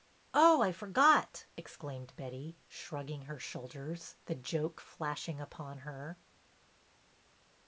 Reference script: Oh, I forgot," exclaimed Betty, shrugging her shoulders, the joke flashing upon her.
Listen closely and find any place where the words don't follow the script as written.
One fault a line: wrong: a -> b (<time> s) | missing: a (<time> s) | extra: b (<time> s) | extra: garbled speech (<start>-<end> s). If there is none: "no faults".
no faults